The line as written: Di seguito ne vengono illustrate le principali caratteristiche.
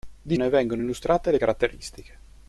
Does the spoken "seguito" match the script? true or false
false